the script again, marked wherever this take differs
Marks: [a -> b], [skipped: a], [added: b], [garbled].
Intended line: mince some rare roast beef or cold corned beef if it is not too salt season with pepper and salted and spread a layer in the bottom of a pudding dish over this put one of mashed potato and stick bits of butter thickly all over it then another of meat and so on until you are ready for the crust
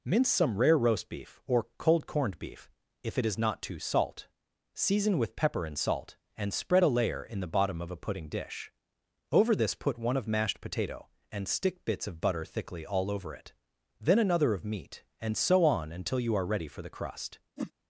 mince some rare roast beef or cold corned beef if it is not too salt season with pepper and [salted -> salt] and spread a layer in the bottom of a pudding dish over this put one of mashed potato and stick bits of butter thickly all over it then another of meat and so on until you are ready for the crust